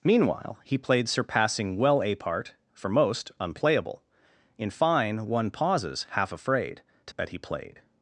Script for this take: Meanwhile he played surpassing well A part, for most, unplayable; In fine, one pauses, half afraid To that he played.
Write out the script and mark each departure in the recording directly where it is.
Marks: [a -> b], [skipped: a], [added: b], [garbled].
Meanwhile he played surpassing well A part, for most, unplayable; In fine, one pauses, half afraid To that he played.